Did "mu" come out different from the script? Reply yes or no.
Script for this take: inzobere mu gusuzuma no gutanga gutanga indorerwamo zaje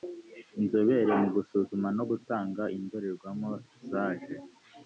no